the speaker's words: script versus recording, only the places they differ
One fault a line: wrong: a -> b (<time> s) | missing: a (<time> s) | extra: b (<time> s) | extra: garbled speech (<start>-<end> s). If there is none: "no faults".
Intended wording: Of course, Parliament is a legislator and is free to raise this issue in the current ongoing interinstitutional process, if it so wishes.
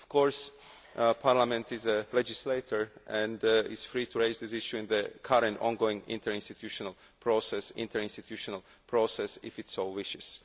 extra: interinstitutional process (7.8 s)